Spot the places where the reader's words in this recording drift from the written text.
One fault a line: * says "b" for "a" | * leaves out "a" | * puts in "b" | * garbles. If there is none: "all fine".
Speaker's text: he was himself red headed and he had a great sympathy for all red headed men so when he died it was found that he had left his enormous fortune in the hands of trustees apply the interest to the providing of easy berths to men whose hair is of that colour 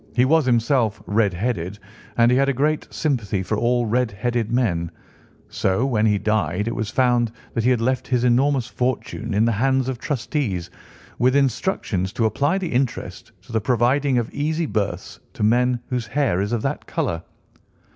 * puts in "with instructions to"